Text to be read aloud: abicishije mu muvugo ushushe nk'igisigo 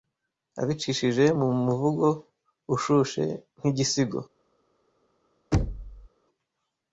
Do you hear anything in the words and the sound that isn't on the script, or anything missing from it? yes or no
yes